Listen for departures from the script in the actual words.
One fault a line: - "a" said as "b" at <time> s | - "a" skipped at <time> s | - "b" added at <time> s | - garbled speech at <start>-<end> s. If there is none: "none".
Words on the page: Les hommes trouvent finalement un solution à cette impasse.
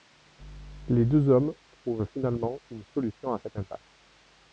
- "deux" added at 1.1 s
- "un" said as "une" at 2.7 s